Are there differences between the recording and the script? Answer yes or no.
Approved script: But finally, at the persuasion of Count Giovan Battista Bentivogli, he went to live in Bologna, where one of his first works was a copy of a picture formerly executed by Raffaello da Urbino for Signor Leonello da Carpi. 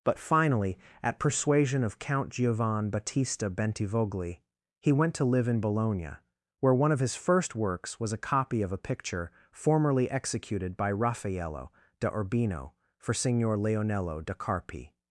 yes